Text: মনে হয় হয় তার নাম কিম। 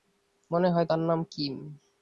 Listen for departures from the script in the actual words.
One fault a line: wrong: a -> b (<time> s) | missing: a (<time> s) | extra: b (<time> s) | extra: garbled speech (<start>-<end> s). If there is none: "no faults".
missing: হয় (0.9 s)